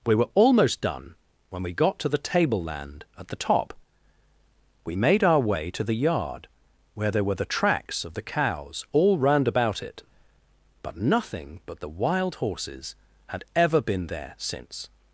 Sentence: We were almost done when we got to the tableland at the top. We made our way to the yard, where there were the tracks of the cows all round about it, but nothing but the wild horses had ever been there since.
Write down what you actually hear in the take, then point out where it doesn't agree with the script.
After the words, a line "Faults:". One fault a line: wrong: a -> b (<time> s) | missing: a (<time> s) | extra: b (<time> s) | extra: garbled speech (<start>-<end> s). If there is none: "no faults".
We were almost done when we got to the tableland at the top. We made our way to the yard, where there were the tracks of the cows all round about it, but nothing but the wild horses had ever been there since.
Faults:
no faults